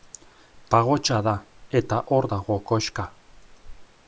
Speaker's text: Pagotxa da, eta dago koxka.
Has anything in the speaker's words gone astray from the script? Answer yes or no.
yes